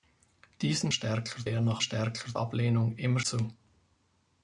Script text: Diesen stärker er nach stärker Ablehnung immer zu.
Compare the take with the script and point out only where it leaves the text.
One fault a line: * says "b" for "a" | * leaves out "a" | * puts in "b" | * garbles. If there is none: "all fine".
all fine